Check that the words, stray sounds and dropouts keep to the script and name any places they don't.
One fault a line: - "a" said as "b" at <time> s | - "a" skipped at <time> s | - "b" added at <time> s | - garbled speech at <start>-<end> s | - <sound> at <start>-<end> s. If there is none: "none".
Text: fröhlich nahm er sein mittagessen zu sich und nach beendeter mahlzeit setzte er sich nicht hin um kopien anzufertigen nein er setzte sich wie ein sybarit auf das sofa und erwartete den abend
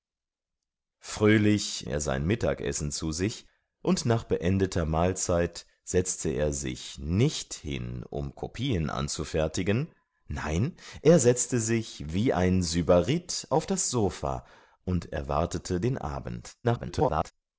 - "nahm" skipped at 1.9 s
- garbled speech at 16.6-17.3 s